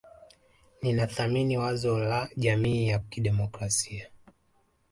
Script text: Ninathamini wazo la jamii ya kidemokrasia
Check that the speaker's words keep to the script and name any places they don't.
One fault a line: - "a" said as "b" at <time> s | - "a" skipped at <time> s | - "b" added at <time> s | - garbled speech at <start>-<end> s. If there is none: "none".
none